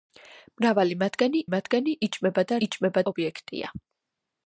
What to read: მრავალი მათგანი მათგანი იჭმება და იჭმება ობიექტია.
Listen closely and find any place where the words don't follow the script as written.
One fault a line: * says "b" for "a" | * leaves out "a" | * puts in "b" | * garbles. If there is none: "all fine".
all fine